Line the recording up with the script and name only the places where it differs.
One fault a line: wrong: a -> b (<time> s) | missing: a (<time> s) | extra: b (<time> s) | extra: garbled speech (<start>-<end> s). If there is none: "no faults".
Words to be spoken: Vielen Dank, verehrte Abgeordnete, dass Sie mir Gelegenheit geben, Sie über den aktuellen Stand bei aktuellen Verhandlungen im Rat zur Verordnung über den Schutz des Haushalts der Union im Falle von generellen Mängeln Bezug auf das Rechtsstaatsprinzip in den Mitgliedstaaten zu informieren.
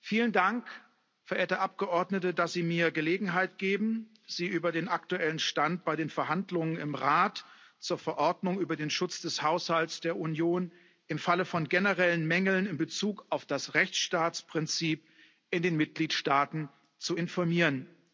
wrong: aktuellen -> den (6.0 s)
extra: in (12.7 s)